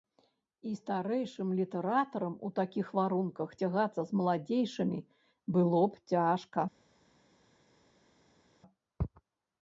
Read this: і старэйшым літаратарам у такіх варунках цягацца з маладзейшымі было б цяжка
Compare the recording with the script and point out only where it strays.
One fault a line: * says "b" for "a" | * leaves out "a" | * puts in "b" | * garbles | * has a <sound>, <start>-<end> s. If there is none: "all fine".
all fine